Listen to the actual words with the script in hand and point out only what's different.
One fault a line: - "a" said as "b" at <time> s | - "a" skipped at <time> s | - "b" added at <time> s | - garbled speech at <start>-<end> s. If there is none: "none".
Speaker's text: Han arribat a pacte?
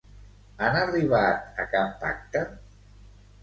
- "cap" added at 1.8 s